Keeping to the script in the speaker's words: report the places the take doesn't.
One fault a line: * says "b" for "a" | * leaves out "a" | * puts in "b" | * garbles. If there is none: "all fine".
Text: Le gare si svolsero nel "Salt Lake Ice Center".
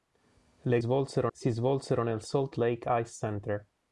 * says "svolsero" for "gare"